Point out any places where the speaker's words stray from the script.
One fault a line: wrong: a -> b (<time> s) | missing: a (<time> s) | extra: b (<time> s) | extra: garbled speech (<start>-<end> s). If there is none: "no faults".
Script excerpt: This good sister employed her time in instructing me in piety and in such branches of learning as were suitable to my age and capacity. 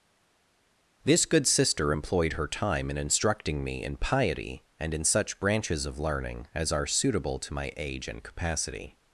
wrong: were -> are (6.7 s)